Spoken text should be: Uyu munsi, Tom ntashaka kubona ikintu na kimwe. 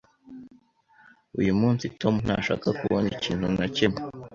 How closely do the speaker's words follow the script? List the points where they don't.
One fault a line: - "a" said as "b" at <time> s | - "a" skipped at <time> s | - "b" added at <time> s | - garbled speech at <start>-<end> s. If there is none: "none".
none